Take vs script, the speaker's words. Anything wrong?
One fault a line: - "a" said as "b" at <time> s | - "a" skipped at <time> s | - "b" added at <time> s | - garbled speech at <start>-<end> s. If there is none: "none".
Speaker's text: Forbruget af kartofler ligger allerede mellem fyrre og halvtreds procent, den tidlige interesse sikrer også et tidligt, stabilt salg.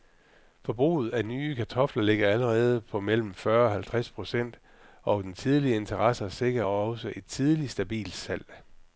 - "nye" added at 1.2 s
- "på" added at 2.8 s
- "og" added at 5.0 s